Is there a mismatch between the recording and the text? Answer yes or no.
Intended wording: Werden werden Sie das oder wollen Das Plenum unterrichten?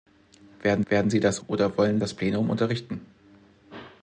no